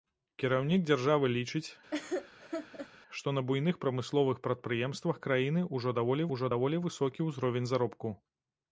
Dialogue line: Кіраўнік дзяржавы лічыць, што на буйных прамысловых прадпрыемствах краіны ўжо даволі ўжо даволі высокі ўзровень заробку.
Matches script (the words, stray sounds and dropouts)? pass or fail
fail